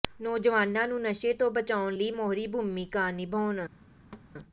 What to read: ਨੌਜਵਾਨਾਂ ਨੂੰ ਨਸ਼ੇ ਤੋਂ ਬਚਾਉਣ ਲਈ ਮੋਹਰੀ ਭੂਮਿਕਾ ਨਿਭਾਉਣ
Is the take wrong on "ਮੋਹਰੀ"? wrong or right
right